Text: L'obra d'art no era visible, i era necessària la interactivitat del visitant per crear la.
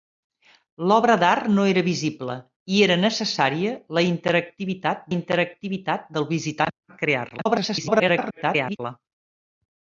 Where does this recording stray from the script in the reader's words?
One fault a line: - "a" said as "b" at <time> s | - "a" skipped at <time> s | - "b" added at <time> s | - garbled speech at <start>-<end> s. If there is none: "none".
- "interactivitat" added at 5.1 s
- garbled speech at 7.4-8.8 s